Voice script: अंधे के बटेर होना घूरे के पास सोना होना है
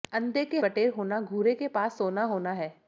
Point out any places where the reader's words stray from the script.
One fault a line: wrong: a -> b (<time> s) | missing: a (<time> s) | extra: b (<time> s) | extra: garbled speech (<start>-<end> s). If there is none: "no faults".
no faults